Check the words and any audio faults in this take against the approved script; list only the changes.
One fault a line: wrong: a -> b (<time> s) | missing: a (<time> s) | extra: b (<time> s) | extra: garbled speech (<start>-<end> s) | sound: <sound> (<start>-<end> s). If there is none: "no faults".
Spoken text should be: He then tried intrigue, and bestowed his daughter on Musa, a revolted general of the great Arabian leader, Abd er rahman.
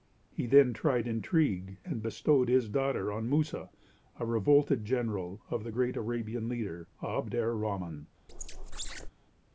sound: squeak (8.3-9.1 s)